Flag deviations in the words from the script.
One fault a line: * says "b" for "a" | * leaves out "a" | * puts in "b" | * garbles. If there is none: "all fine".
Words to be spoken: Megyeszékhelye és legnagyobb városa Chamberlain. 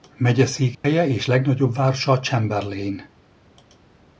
all fine